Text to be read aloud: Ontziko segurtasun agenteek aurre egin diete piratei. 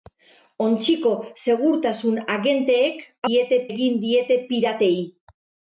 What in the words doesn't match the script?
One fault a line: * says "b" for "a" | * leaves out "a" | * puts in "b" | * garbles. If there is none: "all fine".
* says "diete" for "aurre"